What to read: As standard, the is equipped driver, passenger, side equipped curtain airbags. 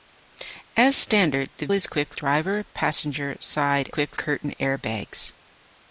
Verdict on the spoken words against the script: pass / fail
pass